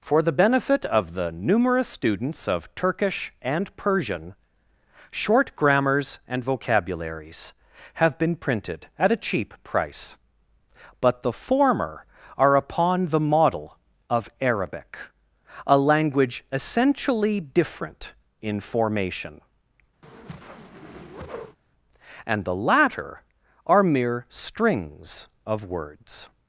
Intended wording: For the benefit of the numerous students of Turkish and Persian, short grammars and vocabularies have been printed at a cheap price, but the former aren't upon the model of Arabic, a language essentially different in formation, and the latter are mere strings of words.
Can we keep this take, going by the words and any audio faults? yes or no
no